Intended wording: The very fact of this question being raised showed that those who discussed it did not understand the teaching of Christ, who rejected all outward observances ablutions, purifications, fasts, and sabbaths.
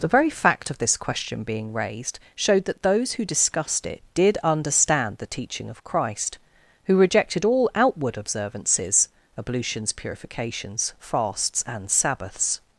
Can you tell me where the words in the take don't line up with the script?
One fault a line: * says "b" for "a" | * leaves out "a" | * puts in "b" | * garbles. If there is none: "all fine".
* leaves out "not"